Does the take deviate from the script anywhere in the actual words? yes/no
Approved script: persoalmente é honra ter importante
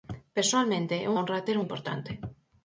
no